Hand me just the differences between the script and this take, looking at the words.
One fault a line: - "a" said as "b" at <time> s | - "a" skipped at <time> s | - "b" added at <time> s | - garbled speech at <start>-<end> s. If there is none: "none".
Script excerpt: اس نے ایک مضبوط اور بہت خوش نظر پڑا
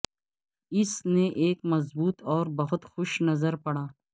none